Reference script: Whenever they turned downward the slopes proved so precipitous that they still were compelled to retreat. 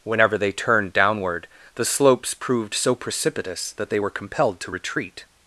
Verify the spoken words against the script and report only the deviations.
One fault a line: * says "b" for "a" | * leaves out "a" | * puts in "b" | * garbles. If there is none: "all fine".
* leaves out "still"